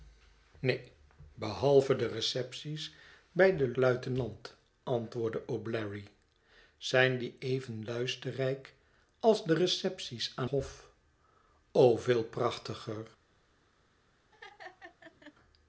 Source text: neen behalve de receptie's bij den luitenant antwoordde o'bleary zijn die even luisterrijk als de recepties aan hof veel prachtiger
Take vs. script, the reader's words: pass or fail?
pass